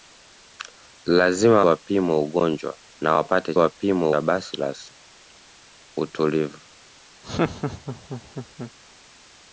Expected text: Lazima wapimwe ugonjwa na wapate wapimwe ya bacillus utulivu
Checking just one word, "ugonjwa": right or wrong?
right